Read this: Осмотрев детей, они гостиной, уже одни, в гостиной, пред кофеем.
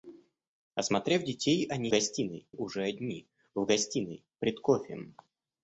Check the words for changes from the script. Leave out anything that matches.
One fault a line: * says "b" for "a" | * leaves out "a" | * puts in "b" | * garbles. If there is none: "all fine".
all fine